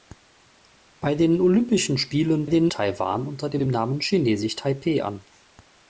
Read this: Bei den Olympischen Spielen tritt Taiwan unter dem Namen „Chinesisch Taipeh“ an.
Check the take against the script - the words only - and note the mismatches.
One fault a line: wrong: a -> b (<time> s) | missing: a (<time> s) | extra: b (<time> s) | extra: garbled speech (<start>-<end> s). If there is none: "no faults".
wrong: tritt -> den (2.5 s)
extra: dem (3.6 s)